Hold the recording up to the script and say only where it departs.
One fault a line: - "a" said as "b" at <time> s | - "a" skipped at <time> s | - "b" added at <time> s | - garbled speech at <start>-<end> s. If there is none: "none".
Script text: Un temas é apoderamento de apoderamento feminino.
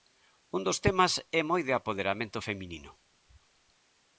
- "dos" added at 0.7 s
- "apoderamento" said as "moi" at 1.5 s